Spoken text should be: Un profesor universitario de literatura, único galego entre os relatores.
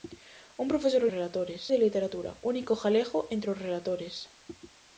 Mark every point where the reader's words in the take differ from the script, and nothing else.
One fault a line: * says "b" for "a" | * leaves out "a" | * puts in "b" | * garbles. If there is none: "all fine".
* says "relatores" for "universitario"